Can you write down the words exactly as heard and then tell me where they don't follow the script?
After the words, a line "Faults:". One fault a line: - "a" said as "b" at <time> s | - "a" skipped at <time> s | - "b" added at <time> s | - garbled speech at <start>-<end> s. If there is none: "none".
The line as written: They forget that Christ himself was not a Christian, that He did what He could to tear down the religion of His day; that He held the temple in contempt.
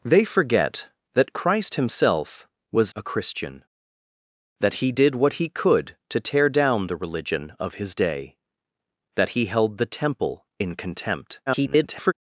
They forget that Christ himself was a Christian, that He did what He could to tear down the religion of His day; that He held the temple in contempt. [garbled]
Faults:
- "not" skipped at 2.9 s
- garbled speech at 11.5-12.1 s